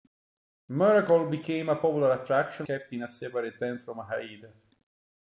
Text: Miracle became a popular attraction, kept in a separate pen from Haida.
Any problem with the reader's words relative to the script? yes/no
no